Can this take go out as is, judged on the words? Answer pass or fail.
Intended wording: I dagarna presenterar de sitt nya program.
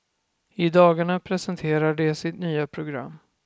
pass